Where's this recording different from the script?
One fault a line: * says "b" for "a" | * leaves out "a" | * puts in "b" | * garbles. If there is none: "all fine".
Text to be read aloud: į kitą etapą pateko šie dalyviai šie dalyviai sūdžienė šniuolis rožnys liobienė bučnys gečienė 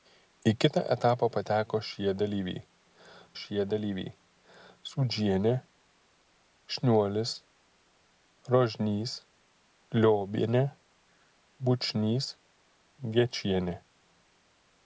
all fine